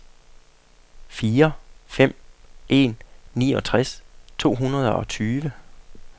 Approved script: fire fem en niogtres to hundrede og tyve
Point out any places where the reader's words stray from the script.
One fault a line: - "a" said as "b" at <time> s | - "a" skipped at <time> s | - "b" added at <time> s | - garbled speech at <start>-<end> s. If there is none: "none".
none